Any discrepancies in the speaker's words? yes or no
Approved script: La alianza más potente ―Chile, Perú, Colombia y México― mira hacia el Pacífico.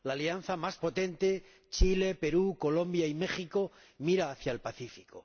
no